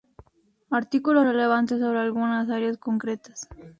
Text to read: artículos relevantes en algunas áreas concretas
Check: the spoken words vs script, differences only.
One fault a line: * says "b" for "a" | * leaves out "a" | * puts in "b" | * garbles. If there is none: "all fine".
* says "sobre" for "en"